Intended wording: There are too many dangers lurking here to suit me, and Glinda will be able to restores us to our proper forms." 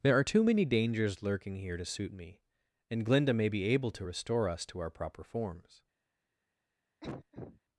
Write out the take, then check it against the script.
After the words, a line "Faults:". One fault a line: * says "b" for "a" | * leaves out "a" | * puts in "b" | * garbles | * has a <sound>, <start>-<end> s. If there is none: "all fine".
There are too many dangers lurking here to suit me, and Glinda may be able to restore us to our proper forms."
Faults:
* says "may" for "will"
* says "restore" for "restores"
* has a cough, 7.0-7.6 s